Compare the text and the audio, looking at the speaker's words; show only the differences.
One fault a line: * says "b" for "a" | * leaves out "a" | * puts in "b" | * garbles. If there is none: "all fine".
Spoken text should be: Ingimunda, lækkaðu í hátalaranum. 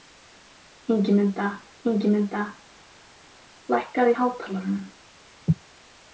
* puts in "ingimunda"